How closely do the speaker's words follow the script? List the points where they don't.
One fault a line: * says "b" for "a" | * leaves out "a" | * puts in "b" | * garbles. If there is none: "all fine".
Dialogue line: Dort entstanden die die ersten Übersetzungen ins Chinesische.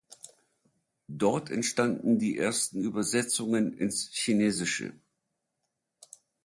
* leaves out "die"